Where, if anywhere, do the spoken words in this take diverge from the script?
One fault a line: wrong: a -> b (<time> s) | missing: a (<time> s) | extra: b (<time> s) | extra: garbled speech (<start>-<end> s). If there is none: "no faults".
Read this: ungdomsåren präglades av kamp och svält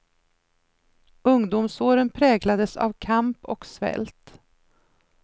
no faults